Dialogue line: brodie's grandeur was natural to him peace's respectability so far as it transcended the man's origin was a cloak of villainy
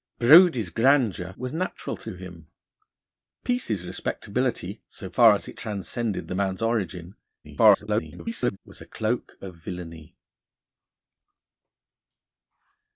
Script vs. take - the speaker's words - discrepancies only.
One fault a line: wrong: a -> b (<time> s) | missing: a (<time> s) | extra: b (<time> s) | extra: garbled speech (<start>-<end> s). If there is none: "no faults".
extra: garbled speech (7.4-8.6 s)